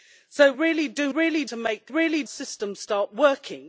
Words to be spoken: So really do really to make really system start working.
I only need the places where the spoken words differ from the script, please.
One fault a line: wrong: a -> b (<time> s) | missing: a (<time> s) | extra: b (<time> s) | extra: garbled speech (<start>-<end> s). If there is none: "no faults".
no faults